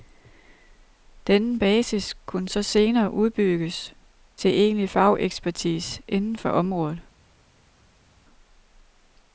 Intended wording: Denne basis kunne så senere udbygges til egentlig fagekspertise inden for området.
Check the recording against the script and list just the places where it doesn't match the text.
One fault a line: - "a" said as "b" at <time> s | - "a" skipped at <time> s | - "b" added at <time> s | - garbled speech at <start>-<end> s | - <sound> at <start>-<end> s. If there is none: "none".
none